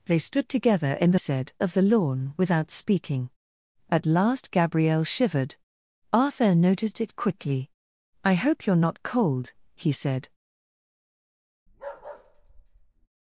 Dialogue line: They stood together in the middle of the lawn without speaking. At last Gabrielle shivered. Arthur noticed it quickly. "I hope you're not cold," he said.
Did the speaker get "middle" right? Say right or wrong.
wrong